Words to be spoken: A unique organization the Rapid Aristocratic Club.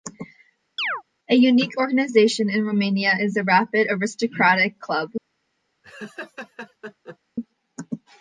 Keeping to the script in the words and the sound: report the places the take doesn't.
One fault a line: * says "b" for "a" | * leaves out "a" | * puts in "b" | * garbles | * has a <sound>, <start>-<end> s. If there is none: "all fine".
* has a chirp, 0.8-1.0 s
* puts in "in Romania is"
* has a laugh, 5.8-7.2 s